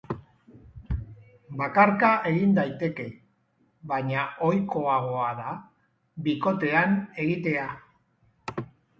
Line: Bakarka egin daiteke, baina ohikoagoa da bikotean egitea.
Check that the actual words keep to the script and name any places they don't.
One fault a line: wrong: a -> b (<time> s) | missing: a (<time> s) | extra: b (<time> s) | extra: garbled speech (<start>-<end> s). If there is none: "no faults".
no faults